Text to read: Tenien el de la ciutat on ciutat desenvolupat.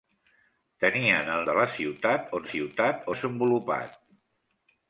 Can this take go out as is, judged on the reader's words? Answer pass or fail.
pass